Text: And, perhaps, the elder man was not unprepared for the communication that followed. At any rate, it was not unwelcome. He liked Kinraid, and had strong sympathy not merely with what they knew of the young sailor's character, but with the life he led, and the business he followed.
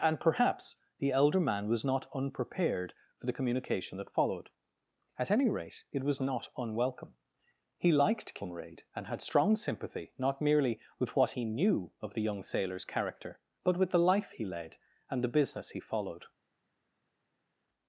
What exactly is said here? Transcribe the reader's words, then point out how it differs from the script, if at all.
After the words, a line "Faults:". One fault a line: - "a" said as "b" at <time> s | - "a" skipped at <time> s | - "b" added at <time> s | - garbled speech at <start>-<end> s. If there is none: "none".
And, perhaps, the elder man was not unprepared for the communication that followed. At any rate, it was not unwelcome. He liked Kinraid, and had strong sympathy not merely with what he knew of the young sailor's character, but with the life he led, and the business he followed.
Faults:
- "they" said as "he" at 11.3 s